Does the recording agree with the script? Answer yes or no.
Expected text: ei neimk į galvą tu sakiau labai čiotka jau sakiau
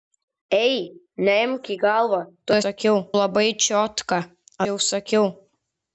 yes